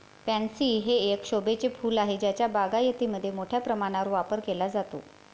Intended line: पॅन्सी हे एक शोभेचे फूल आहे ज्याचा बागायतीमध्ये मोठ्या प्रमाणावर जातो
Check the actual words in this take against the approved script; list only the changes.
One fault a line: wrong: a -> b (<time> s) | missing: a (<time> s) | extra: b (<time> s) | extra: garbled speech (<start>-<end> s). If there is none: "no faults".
extra: वापर केला (4.1 s)